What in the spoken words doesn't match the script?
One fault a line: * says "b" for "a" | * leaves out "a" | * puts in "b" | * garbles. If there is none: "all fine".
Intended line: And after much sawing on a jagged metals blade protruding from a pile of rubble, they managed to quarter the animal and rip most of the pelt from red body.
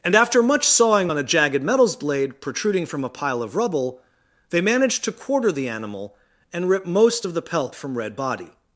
all fine